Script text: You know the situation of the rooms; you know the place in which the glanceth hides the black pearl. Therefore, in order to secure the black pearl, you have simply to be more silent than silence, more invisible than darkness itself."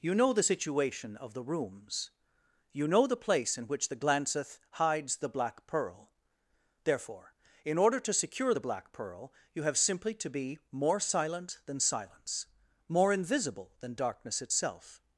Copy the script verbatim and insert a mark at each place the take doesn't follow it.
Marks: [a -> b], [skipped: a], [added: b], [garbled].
You know the situation of the rooms; you know the place in which the glanceth hides the black pearl. Therefore, in order to secure the black pearl, you have simply to be more silent than silence, more invisible than darkness itself."